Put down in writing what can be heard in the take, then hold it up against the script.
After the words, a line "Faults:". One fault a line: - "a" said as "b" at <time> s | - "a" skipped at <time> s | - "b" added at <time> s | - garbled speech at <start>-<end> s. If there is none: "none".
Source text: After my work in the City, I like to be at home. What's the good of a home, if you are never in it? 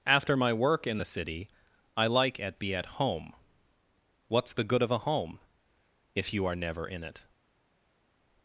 After my work in the City, I like at be at home. What's the good of a home, if you are never in it?
Faults:
- "to" said as "at" at 2.4 s